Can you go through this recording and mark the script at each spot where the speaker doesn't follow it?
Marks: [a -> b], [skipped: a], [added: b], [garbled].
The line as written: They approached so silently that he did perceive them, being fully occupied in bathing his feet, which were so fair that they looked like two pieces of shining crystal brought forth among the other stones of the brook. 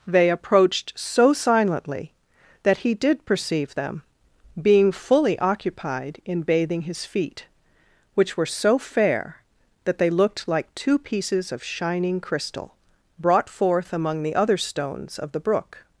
They approached so silently that he did perceive them, being fully occupied in bathing his feet, which were so fair that they looked like two pieces of shining crystal brought forth among the other stones of the brook.